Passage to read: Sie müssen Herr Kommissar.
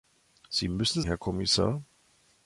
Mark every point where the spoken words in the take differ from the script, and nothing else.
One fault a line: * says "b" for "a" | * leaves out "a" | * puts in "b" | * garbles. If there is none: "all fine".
all fine